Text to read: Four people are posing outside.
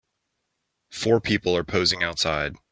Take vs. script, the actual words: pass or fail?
pass